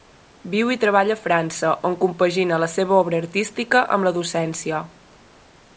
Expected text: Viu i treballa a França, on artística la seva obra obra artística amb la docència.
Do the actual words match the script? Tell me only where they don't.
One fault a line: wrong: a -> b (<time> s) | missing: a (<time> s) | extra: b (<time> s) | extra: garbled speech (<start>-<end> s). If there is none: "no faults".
wrong: artística -> compagina (2.0 s)
missing: obra (3.2 s)